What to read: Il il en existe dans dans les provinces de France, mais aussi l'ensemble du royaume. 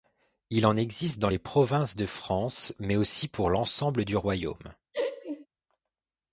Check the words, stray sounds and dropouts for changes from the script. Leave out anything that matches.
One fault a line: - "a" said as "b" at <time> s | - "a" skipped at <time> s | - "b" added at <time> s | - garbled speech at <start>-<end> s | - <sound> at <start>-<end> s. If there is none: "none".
- "il" skipped at 0.7 s
- "dans" skipped at 1.3 s
- "pour" added at 3.2 s
- laugh at 4.9-5.5 s